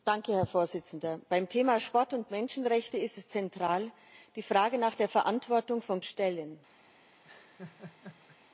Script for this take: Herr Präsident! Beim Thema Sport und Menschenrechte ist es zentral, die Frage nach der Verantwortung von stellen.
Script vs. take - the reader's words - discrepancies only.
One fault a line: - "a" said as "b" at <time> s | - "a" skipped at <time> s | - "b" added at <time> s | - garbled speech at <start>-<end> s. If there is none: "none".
none